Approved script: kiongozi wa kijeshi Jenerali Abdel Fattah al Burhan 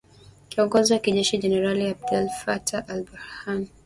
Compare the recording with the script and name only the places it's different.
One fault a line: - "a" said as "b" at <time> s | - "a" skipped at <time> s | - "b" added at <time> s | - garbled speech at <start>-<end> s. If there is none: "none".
none